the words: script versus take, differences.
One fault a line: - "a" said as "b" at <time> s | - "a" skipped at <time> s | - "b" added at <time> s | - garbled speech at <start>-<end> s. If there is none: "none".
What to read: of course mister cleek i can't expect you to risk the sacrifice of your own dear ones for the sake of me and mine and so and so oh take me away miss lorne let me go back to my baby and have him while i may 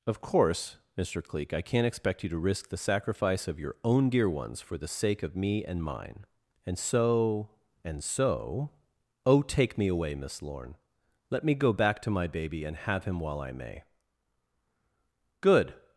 - "good" added at 15.4 s